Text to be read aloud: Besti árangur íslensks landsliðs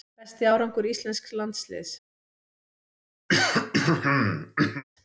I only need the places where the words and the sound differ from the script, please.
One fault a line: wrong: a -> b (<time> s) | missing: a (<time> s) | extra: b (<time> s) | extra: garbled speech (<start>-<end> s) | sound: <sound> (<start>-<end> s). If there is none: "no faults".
sound: throat clearing (3.3-4.8 s)